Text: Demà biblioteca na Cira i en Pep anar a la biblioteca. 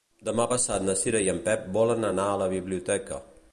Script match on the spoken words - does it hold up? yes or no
no